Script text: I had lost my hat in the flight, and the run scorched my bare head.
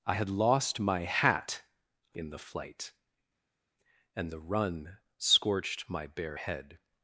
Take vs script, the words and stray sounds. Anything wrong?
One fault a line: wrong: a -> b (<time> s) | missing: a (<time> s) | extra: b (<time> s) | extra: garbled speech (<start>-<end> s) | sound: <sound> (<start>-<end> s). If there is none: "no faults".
no faults